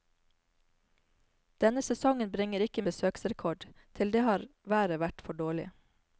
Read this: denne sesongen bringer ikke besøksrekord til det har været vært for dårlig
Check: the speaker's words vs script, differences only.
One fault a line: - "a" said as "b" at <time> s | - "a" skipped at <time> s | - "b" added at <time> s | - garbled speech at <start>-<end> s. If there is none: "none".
none